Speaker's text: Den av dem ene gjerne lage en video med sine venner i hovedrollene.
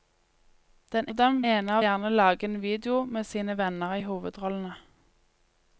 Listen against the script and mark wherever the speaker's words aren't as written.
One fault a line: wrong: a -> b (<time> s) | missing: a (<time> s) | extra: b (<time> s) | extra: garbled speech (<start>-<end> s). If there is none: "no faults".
no faults